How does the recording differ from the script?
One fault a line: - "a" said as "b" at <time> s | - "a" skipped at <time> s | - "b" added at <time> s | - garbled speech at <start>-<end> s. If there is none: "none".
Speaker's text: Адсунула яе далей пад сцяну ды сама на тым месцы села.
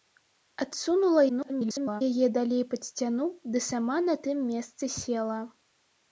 - garbled speech at 1.3-2.0 s